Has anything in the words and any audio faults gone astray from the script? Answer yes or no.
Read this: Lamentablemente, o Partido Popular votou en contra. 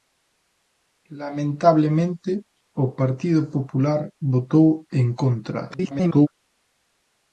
yes